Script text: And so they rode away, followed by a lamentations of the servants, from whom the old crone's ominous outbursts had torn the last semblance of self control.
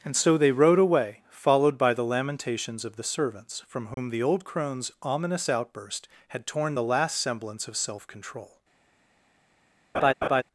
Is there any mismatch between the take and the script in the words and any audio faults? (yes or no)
yes